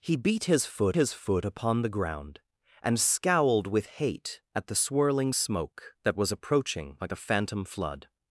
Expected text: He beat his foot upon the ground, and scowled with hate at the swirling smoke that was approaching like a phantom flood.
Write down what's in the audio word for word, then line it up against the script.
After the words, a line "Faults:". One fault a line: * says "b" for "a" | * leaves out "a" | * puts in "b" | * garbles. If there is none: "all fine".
He beat his foot his foot upon the ground, and scowled with hate at the swirling smoke that was approaching like a phantom flood.
Faults:
* puts in "his foot"